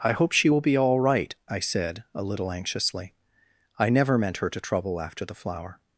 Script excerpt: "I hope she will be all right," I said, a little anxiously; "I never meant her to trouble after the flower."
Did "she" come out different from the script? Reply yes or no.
no